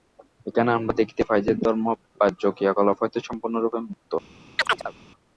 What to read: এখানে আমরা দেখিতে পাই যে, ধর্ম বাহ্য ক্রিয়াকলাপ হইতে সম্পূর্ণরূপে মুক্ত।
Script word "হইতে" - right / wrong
right